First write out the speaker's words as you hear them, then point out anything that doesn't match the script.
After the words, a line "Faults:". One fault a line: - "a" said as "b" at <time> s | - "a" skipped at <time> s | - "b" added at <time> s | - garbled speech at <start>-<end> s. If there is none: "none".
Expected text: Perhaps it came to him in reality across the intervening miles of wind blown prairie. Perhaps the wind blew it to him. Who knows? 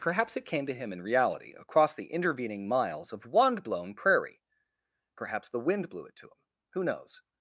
Perhaps it came to him in reality across the intervening miles of wand blown prairie. Perhaps the wind blew it to him. Who knows?
Faults:
- "wind" said as "wand" at 3.3 s